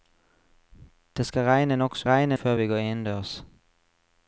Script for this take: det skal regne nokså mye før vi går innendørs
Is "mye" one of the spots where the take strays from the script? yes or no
yes